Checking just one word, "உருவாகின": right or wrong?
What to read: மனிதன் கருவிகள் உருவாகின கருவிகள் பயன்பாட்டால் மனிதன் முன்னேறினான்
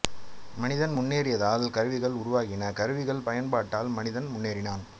right